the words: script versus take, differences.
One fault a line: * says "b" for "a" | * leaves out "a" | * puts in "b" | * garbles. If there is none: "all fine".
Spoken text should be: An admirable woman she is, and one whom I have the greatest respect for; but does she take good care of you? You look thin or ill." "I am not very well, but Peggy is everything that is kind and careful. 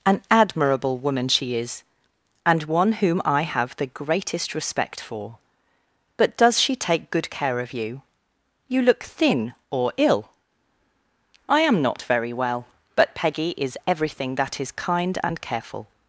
all fine